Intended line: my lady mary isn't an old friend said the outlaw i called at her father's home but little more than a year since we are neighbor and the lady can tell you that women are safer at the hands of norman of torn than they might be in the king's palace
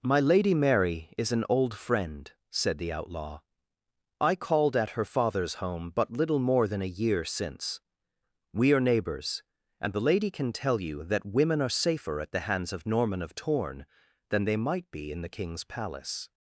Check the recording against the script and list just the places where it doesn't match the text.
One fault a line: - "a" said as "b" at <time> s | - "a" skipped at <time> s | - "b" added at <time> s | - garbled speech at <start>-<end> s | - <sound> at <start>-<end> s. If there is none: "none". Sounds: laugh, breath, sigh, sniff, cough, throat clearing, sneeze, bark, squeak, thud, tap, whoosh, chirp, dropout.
- "isn't" said as "is" at 1.2 s
- "neighbor" said as "neighbors" at 8.8 s